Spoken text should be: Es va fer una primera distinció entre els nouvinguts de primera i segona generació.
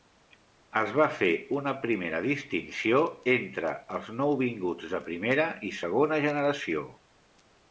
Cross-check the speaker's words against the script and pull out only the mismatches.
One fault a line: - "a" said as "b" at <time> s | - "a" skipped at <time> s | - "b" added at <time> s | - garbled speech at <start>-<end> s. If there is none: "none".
none